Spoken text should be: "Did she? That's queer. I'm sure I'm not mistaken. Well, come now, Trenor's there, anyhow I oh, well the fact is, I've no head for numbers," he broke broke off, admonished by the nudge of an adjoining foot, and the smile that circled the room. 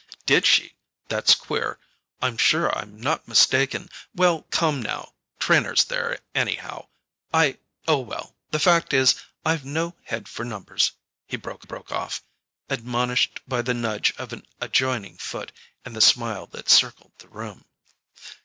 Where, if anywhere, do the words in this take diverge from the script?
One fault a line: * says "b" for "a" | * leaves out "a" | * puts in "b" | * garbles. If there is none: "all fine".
all fine